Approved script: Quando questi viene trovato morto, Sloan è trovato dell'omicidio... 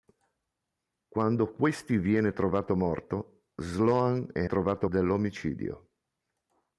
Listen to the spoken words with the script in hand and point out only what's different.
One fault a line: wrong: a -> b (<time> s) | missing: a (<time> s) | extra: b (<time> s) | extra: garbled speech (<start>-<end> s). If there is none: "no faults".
no faults